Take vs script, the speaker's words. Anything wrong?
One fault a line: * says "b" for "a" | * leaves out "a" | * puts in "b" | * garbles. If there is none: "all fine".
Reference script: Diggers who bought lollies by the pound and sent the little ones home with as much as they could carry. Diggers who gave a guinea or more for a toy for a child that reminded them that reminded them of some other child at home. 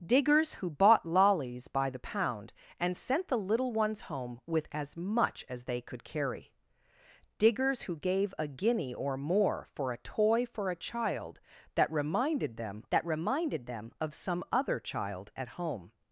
all fine